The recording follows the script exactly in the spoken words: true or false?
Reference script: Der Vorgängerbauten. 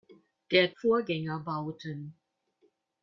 true